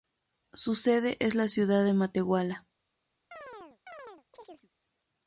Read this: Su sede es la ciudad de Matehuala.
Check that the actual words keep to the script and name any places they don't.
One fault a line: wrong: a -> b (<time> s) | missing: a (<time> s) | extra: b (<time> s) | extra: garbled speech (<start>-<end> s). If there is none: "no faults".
no faults